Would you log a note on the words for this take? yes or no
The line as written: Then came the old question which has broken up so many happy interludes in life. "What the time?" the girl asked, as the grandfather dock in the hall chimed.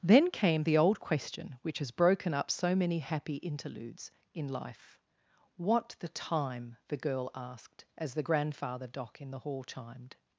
no